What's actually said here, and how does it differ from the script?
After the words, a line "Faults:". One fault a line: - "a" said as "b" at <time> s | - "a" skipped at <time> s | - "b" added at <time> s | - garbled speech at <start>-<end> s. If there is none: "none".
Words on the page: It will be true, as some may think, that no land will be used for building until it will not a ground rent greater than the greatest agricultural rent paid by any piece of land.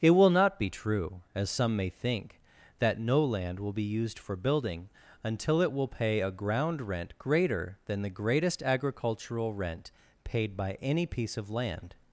It will not be true, as some may think, that no land will be used for building until it will pay a ground rent greater than the greatest agricultural rent paid by any piece of land.
Faults:
- "not" added at 0.3 s
- "not" said as "pay" at 5.9 s